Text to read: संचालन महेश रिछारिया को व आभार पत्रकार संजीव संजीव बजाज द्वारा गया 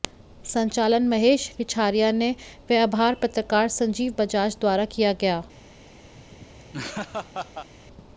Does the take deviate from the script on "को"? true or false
true